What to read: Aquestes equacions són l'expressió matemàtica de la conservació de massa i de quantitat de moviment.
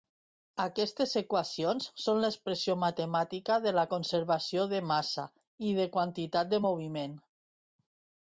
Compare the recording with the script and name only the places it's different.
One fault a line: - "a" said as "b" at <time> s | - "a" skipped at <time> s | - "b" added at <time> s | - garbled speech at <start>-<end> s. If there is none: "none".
none